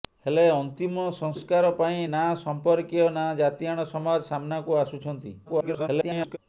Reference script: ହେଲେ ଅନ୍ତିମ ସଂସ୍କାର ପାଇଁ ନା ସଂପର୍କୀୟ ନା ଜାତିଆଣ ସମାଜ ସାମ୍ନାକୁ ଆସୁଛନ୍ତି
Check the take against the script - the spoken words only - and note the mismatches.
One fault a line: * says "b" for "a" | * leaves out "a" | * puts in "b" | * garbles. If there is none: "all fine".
* garbles